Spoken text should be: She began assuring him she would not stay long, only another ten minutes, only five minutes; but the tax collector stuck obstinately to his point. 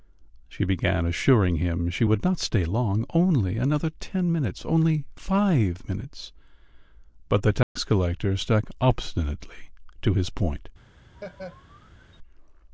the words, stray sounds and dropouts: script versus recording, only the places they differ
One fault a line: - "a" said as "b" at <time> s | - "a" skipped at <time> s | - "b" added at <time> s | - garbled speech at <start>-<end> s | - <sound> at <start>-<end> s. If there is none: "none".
- dropout at 7.6-7.8 s
- laugh at 11.1-12.2 s